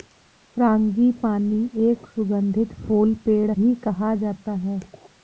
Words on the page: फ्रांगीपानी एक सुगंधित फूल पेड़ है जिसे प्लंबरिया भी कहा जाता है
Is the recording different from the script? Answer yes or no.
yes